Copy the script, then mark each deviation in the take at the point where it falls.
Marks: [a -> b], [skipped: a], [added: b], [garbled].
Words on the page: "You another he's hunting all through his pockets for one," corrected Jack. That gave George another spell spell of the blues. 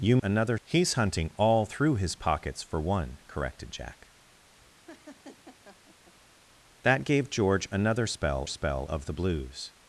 "You another he's hunting all through his pockets for one," corrected Jack. That gave George another spell spell of the blues.